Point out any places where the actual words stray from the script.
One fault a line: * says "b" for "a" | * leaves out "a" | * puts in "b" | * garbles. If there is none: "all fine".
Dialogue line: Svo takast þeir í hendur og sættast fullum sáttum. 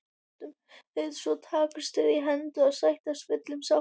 all fine